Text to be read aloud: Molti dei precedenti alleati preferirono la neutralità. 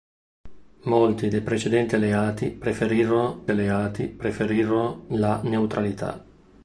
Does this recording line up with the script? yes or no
no